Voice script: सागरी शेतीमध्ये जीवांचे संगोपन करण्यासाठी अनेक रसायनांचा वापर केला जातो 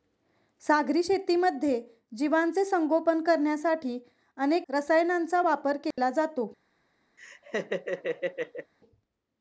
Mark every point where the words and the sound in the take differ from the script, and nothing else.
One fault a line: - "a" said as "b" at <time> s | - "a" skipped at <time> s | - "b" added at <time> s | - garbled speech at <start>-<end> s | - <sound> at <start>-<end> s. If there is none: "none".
- dropout at 5.9-6.0 s
- laugh at 7.2-8.7 s